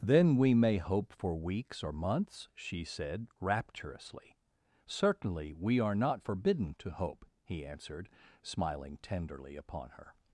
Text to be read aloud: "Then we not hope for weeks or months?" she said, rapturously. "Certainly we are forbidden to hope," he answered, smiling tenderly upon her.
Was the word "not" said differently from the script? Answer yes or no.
yes